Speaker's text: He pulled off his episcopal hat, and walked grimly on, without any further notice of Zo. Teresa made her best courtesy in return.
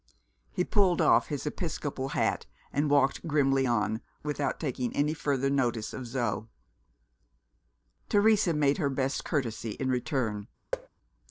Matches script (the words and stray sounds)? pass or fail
fail